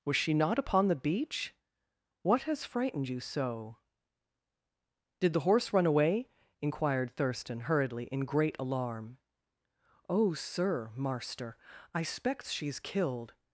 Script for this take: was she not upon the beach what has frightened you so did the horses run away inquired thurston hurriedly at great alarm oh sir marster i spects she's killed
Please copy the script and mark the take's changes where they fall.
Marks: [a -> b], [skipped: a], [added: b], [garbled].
was she not upon the beach what has frightened you so did the [horses -> horse] run away inquired thurston hurriedly [at -> in] great alarm oh sir marster i spects she's killed